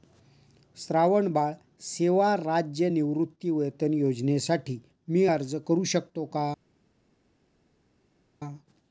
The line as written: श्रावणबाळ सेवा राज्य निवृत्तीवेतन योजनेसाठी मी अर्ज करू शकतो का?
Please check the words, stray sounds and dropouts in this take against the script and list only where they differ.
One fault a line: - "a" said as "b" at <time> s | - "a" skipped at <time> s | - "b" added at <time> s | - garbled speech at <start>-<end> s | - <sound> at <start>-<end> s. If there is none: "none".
none